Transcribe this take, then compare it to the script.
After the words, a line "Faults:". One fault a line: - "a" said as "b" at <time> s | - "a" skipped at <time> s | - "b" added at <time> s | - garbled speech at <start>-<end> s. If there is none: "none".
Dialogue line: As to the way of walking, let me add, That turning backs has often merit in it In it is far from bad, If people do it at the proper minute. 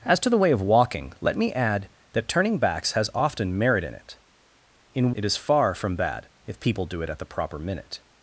As to the way of walking, let me add, That turning backs has often merit in it In it is far from bad, If people do it at the proper minute.
Faults:
none